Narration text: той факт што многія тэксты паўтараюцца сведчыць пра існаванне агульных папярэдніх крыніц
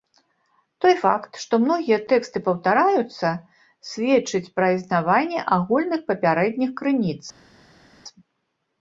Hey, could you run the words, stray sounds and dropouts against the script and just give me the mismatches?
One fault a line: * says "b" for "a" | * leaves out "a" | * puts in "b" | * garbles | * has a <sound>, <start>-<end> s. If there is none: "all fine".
all fine